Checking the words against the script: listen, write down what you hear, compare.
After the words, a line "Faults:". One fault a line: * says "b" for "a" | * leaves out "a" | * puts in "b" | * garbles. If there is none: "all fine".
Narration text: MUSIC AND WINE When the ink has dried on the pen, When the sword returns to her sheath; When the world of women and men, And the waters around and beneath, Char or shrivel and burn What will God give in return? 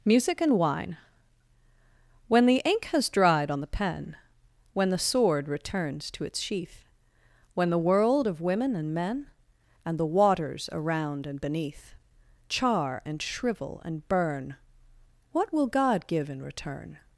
MUSIC AND WINE When the ink has dried on the pen, When the sword returns to its sheath; When the world of women and men, And the waters around and beneath, Char and shrivel and burn What will God give in return?
Faults:
* says "its" for "her"
* says "and" for "or"